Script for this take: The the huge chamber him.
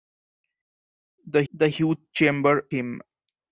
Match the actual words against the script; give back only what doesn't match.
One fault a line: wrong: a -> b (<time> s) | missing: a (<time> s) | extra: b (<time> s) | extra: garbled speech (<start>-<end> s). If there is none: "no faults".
no faults